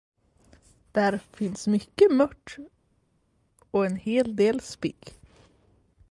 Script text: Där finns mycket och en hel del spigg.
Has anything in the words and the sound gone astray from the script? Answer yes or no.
yes